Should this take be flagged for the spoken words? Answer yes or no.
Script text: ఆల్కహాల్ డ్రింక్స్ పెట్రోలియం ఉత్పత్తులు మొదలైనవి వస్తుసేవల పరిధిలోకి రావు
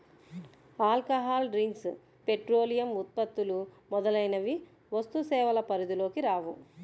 no